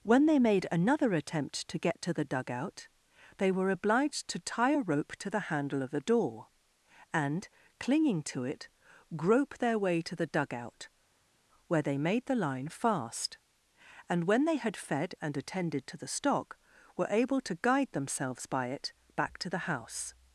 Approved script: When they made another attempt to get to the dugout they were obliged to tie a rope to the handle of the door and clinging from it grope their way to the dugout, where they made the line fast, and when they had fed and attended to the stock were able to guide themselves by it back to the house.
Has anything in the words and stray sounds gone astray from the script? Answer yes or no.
yes